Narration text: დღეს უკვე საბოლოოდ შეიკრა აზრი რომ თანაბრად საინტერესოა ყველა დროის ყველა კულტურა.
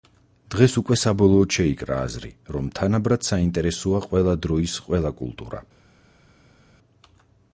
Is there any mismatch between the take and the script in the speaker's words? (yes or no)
no